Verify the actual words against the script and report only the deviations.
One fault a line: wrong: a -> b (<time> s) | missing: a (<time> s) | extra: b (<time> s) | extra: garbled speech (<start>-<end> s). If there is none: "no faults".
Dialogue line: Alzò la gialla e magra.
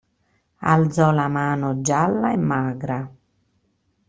extra: mano (1.3 s)